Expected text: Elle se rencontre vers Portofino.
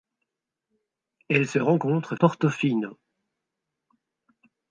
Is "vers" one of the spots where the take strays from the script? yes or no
yes